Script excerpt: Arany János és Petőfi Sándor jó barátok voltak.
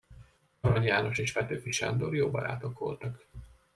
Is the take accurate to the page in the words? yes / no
yes